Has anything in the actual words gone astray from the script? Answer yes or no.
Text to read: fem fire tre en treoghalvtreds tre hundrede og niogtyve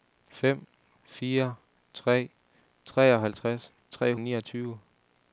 yes